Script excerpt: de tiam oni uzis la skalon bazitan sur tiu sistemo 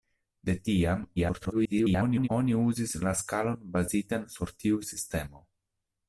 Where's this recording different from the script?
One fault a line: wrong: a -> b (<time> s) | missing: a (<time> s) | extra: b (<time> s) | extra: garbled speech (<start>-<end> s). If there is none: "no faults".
extra: garbled speech (1.2-2.3 s)